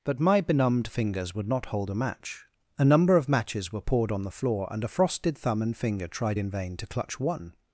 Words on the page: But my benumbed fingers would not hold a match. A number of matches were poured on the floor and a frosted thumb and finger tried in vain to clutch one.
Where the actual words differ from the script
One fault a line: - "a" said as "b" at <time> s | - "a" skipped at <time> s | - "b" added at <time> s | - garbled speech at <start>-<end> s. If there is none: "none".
none